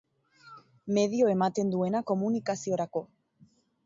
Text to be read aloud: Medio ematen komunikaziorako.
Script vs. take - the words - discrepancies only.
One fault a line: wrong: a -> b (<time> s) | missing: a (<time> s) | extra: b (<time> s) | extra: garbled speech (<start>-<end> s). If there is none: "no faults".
extra: duena (1.8 s)